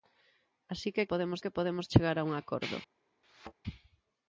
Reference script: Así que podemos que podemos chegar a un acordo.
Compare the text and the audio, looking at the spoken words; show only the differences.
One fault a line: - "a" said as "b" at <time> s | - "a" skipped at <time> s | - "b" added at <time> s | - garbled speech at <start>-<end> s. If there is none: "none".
none